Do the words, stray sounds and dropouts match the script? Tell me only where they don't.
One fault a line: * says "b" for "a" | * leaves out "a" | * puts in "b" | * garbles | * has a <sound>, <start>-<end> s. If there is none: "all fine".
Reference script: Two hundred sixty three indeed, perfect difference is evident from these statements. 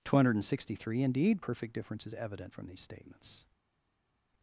all fine